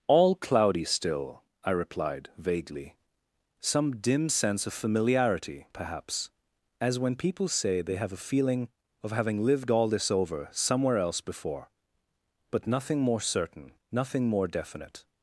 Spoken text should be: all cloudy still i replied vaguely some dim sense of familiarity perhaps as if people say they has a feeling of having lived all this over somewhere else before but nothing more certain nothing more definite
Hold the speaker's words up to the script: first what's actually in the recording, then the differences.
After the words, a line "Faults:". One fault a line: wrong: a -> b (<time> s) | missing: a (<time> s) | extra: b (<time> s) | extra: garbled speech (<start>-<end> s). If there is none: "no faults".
all cloudy still i replied vaguely some dim sense of familiarity perhaps as when people say they have a feeling of having lived all this over somewhere else before but nothing more certain nothing more definite
Faults:
wrong: if -> when (7.0 s)
wrong: has -> have (8.0 s)